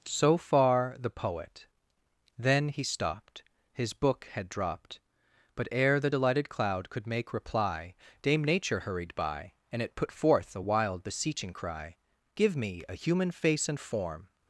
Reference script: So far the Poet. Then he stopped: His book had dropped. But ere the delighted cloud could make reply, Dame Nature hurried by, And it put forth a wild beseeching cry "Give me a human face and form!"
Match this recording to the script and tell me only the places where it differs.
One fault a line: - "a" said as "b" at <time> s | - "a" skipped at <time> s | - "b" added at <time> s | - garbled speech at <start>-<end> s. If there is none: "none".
none